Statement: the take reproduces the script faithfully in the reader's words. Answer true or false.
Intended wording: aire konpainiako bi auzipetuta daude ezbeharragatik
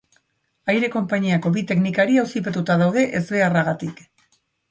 false